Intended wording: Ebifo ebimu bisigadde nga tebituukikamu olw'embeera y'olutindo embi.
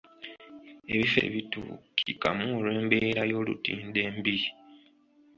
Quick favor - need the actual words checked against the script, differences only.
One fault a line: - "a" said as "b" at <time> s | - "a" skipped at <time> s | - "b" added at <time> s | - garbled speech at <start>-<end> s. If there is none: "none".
- "ebimu bisigadde nga" skipped at 1.2 s